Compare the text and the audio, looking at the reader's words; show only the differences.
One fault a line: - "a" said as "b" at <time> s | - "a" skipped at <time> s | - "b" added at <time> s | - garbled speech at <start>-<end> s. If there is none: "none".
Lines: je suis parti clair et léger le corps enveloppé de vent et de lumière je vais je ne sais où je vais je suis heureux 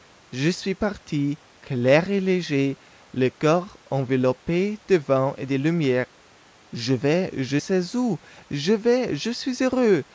- "ne" skipped at 7.6 s